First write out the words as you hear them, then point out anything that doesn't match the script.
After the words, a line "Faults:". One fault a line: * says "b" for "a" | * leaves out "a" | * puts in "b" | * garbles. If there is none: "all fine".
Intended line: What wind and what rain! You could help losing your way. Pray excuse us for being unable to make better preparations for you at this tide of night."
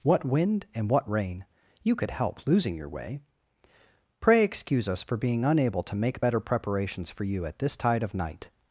What wind and what rain! You could help losing your way. Pray excuse us for being unable to make better preparations for you at this tide of night."
Faults:
all fine